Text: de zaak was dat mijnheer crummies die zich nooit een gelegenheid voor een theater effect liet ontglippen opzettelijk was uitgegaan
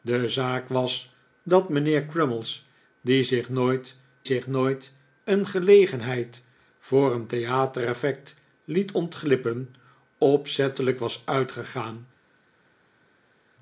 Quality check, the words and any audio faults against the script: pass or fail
fail